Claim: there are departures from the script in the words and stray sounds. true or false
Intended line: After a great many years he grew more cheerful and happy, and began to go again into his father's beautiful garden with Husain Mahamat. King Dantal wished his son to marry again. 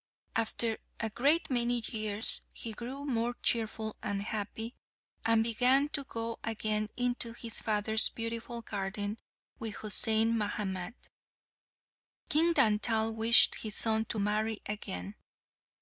false